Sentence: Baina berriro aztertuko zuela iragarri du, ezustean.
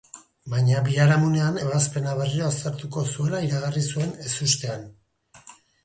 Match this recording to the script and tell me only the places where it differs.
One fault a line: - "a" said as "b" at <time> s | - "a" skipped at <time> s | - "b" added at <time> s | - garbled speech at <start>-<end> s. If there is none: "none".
- "biharamunean ebazpena" added at 0.9 s
- "du" said as "zuen" at 3.9 s